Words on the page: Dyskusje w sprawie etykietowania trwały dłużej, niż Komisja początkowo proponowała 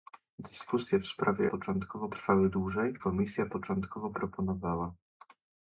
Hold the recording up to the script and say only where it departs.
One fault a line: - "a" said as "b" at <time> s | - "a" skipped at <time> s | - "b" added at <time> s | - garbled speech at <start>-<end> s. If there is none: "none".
- "etykietowania" said as "początkowo" at 1.4 s
- "niż" skipped at 2.9 s